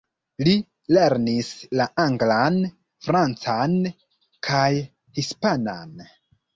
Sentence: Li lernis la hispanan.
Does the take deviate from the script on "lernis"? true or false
false